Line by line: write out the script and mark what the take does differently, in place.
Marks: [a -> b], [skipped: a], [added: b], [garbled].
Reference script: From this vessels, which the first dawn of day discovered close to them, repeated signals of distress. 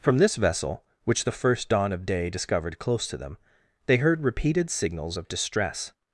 From this [vessels, -> vessel] which the first dawn of day discovered close to them, [added: they heard] repeated signals of distress.